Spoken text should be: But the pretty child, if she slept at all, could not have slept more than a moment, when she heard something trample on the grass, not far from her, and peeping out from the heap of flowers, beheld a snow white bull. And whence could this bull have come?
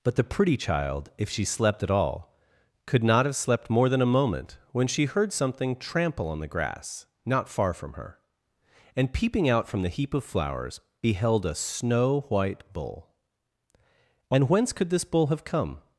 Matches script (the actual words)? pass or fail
pass